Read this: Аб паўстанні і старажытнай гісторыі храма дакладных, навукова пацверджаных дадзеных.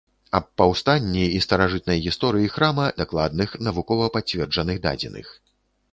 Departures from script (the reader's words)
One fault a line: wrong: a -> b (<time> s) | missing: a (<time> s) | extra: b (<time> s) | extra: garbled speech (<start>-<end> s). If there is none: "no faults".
no faults